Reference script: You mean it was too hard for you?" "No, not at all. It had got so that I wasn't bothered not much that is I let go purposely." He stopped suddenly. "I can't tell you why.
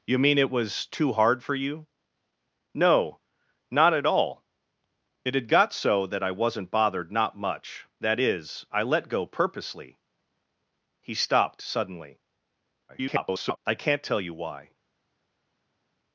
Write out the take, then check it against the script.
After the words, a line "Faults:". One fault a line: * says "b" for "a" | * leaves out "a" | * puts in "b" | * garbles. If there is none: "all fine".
You mean it was too hard for you?" "No, not at all. It had got so that I wasn't bothered not much that is I let go purposely." He stopped suddenly. [garbled] "I can't tell you why.
Faults:
* garbles